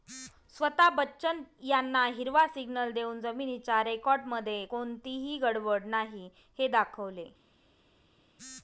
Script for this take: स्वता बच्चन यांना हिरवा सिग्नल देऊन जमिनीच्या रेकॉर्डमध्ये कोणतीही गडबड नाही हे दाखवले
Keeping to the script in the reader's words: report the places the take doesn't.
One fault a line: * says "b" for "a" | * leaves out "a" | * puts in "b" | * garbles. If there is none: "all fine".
all fine